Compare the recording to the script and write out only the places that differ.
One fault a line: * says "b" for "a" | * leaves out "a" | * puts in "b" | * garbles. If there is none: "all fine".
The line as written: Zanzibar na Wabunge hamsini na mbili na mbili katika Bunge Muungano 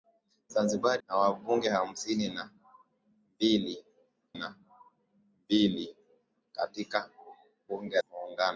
all fine